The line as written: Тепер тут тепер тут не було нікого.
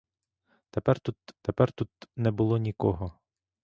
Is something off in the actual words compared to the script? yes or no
no